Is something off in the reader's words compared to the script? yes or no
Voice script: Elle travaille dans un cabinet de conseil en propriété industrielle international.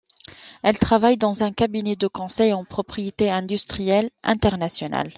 no